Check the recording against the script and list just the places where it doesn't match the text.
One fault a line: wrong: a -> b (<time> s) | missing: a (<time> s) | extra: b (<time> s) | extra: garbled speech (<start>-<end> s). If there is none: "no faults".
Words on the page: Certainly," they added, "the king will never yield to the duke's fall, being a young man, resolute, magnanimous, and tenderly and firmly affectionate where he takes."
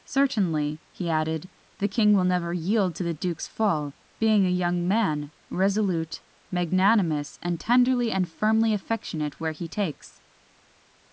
wrong: they -> he (0.9 s)